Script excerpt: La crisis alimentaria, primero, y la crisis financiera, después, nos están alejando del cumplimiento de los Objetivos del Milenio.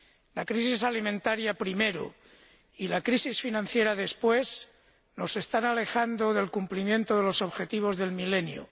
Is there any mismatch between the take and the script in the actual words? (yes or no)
no